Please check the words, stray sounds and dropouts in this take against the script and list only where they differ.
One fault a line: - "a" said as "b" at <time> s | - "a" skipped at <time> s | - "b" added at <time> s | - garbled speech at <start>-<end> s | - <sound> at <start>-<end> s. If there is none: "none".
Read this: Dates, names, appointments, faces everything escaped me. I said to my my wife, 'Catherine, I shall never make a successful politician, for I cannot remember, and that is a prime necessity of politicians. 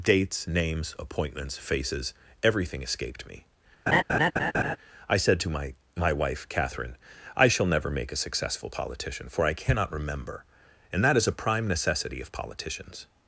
- laugh at 3.9-4.8 s